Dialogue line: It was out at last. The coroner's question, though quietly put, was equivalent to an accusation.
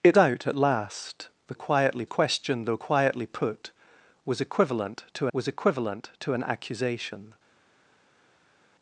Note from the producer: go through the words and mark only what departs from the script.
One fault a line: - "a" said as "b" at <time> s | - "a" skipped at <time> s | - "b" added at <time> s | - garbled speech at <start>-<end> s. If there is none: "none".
- "was" skipped at 0.2 s
- "coroner's" said as "quietly" at 1.5 s
- "was equivalent to" added at 5.3 s